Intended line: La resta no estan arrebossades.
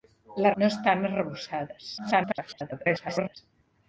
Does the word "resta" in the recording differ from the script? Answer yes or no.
yes